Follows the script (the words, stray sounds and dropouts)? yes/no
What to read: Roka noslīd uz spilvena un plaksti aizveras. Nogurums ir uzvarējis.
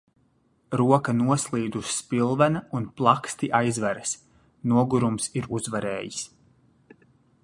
yes